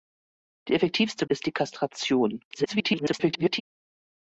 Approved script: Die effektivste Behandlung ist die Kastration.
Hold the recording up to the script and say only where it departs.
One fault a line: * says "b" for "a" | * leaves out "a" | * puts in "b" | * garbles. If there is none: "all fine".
* leaves out "Behandlung"
* garbles